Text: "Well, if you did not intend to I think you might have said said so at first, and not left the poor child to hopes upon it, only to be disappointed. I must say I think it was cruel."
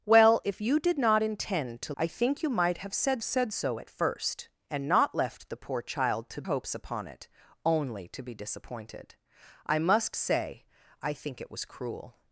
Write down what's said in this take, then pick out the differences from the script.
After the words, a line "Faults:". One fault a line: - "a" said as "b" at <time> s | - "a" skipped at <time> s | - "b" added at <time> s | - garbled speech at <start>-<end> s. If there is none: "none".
"Well, if you did not intend to I think you might have said said so at first, and not left the poor child to hopes upon it, only to be disappointed. I must say I think it was cruel."
Faults:
none